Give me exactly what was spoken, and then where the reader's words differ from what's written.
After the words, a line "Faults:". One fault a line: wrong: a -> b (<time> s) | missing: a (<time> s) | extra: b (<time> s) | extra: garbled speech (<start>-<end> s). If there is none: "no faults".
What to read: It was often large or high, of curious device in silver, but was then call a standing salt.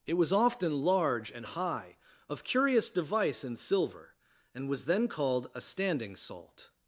It was often large and high, of curious device in silver, and was then called a standing salt.
Faults:
wrong: or -> and (1.3 s)
wrong: but -> and (4.5 s)
wrong: call -> called (5.1 s)